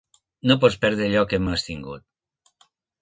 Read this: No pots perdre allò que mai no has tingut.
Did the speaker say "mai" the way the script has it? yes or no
no